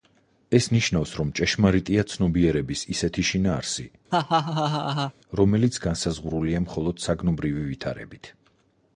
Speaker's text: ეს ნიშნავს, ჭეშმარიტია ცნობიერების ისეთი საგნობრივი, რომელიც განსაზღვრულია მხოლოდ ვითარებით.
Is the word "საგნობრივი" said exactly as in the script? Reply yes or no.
no